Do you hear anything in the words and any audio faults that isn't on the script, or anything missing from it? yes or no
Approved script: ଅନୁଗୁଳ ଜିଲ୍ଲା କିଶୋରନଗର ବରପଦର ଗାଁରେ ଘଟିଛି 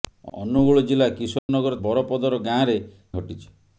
yes